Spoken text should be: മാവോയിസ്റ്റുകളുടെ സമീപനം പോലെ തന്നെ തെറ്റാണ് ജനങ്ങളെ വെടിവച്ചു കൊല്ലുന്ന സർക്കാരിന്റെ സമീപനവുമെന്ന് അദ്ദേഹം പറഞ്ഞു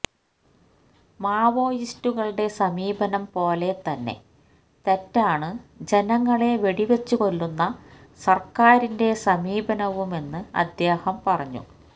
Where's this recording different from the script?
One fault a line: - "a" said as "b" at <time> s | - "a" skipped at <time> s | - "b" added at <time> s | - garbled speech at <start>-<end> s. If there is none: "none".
none